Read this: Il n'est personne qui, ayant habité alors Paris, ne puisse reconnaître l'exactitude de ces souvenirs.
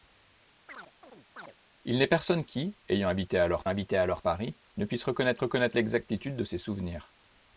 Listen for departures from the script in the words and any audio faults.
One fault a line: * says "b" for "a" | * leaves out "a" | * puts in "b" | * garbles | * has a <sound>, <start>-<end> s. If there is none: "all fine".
* has a chirp, 0.7-1.5 s
* puts in "habité alors"
* puts in "reconnaître"